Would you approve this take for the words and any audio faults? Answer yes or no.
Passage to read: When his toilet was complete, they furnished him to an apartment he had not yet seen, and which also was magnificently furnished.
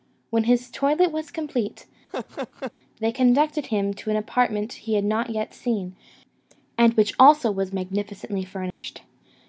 no